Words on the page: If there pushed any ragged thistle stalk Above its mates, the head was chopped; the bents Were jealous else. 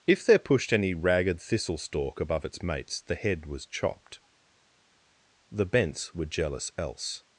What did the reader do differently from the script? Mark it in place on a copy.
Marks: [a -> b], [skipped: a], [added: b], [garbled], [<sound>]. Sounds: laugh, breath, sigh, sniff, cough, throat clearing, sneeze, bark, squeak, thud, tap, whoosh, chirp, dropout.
If there pushed any ragged thistle stalk Above its mates, the head was chopped; the bents Were jealous else.